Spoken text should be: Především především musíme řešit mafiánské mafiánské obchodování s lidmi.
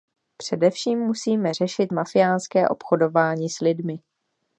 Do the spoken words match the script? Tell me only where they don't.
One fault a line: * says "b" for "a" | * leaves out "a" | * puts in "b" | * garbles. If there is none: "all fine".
* leaves out "především"
* leaves out "mafiánské"